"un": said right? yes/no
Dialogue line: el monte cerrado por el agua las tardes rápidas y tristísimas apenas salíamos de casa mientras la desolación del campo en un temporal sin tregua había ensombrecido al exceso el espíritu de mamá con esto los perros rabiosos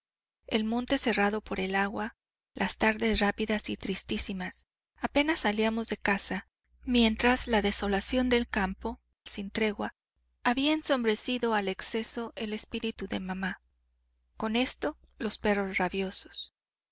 no